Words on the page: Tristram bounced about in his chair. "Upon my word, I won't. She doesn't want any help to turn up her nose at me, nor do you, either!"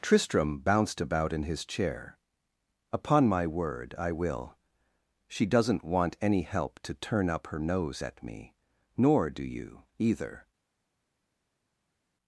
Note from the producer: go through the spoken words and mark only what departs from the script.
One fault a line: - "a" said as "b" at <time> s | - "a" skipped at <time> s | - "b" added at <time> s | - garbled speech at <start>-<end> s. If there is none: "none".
- "won't" said as "will" at 4.1 s